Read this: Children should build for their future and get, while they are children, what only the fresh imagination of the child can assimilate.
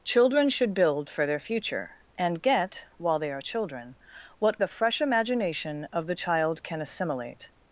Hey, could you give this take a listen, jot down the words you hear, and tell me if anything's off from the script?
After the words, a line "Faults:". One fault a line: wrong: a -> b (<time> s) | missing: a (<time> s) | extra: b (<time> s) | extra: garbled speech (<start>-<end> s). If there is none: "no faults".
Children should build for their future and get, while they are children, what the fresh imagination of the child can assimilate.
Faults:
missing: only (4.6 s)